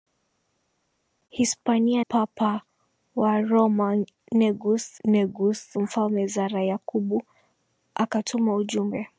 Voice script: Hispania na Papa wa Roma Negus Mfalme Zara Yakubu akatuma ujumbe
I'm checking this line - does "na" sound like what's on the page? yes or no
no